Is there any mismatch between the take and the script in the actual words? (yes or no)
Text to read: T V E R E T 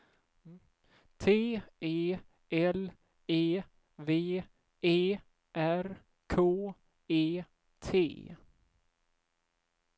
yes